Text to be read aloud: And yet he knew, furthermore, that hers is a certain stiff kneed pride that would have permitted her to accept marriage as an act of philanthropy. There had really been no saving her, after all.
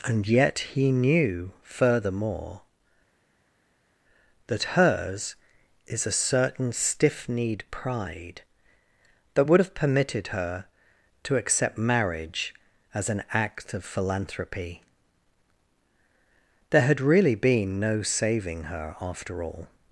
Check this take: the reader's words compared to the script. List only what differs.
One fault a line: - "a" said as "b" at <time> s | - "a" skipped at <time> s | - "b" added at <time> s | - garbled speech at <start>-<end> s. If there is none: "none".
none